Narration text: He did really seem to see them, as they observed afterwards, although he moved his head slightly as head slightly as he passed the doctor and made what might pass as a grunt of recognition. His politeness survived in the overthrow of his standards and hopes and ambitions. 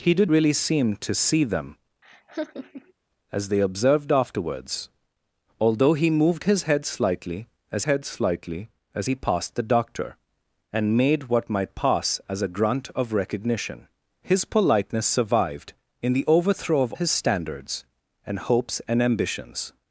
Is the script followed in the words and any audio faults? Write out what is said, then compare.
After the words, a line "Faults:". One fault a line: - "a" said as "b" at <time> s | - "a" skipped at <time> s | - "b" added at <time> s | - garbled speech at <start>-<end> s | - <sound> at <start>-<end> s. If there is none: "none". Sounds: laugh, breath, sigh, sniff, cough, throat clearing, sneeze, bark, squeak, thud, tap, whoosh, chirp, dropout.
He did really seem to see them, as they observed afterwards, although he moved his head slightly as head slightly as he passed the doctor and made what might pass as a grunt of recognition. His politeness survived in the overthrow of his standards and hopes and ambitions.
Faults:
- laugh at 2.0-2.9 s